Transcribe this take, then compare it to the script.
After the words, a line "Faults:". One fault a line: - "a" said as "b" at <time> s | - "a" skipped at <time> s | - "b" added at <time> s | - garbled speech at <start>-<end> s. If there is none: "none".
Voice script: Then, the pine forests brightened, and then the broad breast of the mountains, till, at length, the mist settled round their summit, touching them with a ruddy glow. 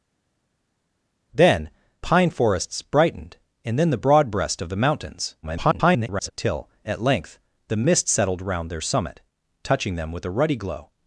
Then, pine forests brightened, and then the broad breast of the mountains, [garbled] till, at length, the mist settled round their summit, touching them with a ruddy glow.
Faults:
- "the" skipped at 1.7 s
- garbled speech at 5.4-6.3 s